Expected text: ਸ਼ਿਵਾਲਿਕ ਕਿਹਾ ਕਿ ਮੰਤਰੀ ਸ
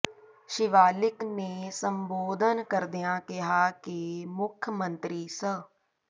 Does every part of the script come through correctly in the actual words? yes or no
no